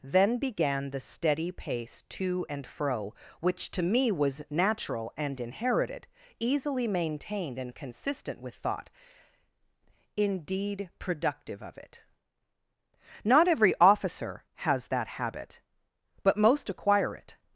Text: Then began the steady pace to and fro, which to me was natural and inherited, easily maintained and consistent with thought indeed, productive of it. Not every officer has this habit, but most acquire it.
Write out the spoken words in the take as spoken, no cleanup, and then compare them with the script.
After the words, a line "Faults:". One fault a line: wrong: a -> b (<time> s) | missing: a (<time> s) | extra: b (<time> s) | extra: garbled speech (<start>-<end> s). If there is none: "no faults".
Then began the steady pace to and fro, which to me was natural and inherited, easily maintained and consistent with thought indeed, productive of it. Not every officer has that habit, but most acquire it.
Faults:
wrong: this -> that (14.9 s)